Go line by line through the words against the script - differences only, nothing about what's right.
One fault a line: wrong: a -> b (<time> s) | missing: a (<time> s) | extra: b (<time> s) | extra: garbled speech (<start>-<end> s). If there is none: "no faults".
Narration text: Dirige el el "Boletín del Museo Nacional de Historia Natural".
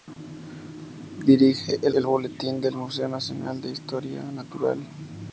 no faults